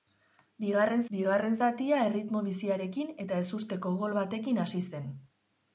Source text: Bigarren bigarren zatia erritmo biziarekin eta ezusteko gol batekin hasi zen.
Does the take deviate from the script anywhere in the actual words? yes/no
no